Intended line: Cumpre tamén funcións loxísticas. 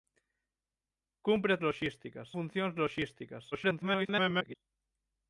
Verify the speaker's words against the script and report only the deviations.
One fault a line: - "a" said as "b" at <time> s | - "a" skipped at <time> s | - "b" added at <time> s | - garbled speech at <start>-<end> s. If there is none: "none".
- "tamén" said as "loxísticas" at 1.6 s
- garbled speech at 3.5-4.6 s